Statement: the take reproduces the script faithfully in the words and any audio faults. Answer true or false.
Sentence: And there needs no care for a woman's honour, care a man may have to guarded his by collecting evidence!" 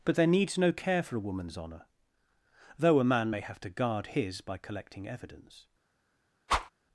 false